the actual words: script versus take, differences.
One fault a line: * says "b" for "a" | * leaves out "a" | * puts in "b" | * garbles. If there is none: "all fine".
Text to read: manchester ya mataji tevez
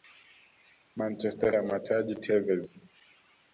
all fine